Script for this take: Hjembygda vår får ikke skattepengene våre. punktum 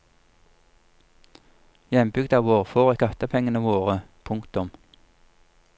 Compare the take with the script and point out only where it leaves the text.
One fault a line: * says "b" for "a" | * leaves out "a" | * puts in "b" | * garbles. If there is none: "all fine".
* leaves out "ikke"